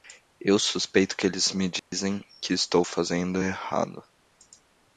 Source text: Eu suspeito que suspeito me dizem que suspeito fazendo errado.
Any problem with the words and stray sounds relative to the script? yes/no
yes